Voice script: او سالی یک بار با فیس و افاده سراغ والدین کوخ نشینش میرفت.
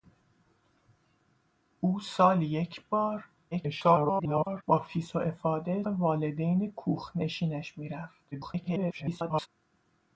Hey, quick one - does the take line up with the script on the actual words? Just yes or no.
no